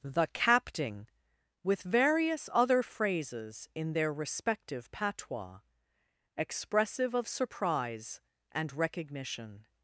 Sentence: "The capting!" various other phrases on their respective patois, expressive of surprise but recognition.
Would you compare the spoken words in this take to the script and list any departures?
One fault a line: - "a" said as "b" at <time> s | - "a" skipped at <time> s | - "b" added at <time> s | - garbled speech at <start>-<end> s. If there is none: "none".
- "with" added at 1.6 s
- "on" said as "in" at 3.8 s
- "but" said as "and" at 8.5 s